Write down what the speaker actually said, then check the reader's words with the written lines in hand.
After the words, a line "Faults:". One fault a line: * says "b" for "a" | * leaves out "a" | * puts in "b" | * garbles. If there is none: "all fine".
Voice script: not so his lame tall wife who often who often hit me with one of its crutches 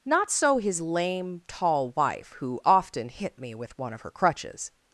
not so his lame tall wife who often hit me with one of her crutches
Faults:
* leaves out "who often"
* says "her" for "its"